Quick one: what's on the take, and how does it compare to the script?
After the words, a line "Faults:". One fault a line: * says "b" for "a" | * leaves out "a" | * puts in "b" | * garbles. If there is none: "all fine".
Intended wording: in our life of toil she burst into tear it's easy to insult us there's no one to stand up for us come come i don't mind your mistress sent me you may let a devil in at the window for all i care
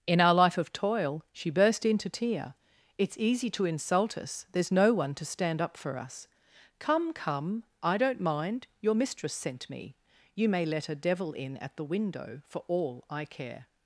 in our life of toil she burst into tear it's easy to insult us there's no one to stand up for us come come i don't mind your mistress sent me you may let a devil in at the window for all i care
Faults:
all fine